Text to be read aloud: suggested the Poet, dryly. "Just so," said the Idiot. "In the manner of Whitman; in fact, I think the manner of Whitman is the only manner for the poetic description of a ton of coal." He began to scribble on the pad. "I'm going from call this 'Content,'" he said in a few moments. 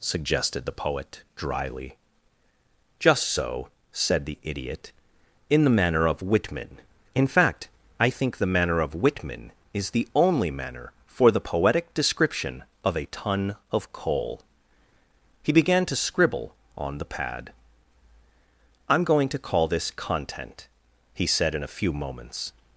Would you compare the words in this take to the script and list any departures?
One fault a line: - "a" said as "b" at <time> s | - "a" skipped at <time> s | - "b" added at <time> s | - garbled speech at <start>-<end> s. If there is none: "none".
- "from" said as "to" at 19.3 s